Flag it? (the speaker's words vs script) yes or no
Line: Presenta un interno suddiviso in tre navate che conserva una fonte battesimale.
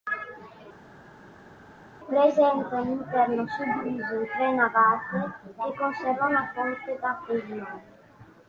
no